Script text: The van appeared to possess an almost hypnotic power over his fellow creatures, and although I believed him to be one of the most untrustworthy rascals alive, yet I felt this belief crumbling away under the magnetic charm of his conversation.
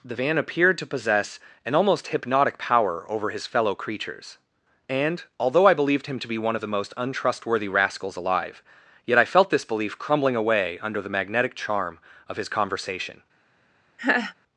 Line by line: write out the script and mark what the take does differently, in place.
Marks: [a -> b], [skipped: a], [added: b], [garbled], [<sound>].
The van appeared to possess an almost hypnotic power over his fellow creatures, and although I believed him to be one of the most untrustworthy rascals alive, yet I felt this belief crumbling away under the magnetic charm of his conversation. [laugh]